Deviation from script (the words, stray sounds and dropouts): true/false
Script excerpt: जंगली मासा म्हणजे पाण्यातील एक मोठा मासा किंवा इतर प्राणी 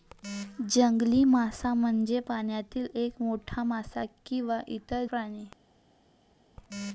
false